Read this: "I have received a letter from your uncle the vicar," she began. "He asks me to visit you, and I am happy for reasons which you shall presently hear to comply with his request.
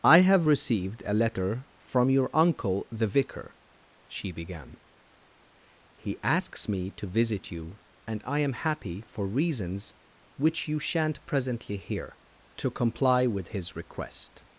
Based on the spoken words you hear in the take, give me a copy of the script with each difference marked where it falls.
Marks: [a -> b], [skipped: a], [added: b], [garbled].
"I have received a letter from your uncle the vicar," she began. "He asks me to visit you, and I am happy for reasons which you [shall -> shan't] presently hear to comply with his request.